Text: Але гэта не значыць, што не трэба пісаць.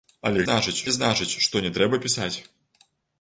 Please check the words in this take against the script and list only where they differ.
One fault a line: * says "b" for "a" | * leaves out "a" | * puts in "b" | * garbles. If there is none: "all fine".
* says "значыць" for "гэта"